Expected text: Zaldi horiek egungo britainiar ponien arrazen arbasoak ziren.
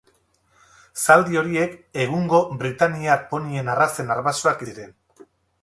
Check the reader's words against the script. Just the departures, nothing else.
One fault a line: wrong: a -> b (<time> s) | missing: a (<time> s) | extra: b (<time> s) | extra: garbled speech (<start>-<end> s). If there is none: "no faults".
no faults